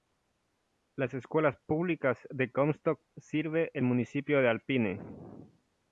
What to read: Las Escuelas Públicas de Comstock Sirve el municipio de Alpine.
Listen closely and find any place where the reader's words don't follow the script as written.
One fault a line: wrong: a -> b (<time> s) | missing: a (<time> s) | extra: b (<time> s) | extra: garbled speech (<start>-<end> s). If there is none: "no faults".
no faults